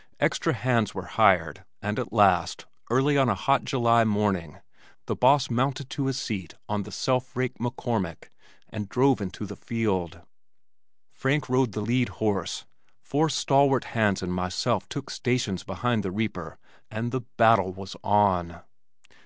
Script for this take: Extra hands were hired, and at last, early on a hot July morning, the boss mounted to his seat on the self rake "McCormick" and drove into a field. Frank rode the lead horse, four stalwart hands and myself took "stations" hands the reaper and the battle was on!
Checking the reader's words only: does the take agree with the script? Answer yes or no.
no